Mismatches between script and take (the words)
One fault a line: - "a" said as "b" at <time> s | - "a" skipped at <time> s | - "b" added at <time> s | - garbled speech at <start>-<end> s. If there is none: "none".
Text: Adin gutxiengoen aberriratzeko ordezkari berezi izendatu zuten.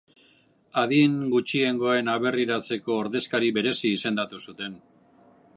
none